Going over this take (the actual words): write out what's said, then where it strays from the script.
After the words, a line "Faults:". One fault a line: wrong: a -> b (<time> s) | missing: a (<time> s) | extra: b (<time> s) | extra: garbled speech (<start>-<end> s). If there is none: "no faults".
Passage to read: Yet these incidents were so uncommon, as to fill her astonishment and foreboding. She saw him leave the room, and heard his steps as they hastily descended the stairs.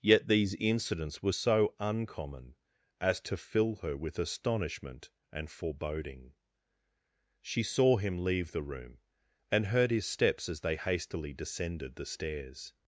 Yet these incidents were so uncommon, as to fill her with astonishment and foreboding. She saw him leave the room, and heard his steps as they hastily descended the stairs.
Faults:
extra: with (4.0 s)